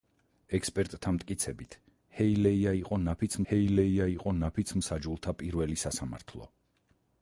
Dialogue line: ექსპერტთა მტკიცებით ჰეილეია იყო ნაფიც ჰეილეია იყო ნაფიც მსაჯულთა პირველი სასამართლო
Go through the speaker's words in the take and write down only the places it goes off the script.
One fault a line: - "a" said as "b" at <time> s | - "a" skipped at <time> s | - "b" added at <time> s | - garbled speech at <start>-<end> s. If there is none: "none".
none